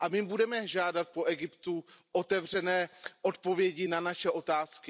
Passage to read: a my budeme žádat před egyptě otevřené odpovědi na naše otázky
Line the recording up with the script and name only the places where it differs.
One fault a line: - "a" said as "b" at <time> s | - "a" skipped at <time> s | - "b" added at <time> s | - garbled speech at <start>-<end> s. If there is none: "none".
- "před" said as "po" at 1.1 s